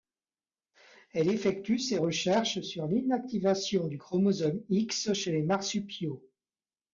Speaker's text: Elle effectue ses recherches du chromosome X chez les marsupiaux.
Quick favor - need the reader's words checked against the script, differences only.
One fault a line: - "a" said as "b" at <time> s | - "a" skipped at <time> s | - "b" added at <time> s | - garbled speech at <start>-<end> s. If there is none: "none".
- "sur l'Inactivation" added at 2.6 s